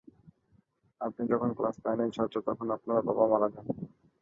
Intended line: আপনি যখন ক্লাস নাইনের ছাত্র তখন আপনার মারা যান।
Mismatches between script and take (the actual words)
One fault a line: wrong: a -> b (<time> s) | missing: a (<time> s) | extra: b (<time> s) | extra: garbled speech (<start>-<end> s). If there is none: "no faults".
extra: বাবা (3.1 s)